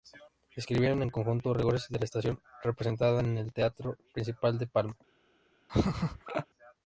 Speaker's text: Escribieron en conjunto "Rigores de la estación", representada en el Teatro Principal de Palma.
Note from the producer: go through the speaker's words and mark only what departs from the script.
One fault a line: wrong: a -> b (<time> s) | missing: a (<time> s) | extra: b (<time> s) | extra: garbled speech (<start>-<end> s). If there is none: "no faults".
no faults